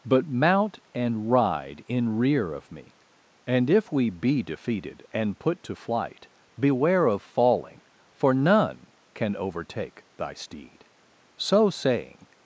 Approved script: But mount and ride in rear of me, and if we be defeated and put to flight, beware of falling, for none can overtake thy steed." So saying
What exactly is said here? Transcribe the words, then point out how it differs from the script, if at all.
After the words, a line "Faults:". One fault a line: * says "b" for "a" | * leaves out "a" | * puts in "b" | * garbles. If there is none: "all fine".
But mount and ride in rear of me, and if we be defeated and put to flight, beware of falling, for none can overtake thy steed." So saying
Faults:
all fine